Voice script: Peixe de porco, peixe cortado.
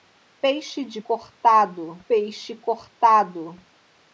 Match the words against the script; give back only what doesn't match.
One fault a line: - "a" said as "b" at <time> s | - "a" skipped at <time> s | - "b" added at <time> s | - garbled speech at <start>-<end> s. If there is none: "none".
- "porco" said as "cortado" at 1.0 s